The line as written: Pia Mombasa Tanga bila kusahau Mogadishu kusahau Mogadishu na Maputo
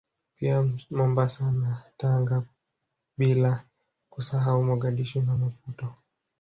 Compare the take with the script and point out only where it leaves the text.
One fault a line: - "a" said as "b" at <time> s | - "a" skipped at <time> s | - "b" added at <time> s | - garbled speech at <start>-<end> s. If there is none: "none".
- "na" added at 1.5 s
- "kusahau Mogadishu" skipped at 5.2 s